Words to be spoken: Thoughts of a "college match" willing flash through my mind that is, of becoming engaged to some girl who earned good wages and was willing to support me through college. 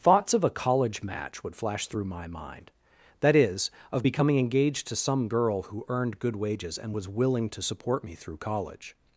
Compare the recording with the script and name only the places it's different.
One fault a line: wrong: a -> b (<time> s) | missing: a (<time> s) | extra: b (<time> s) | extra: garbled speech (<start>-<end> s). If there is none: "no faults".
wrong: willing -> would (1.4 s)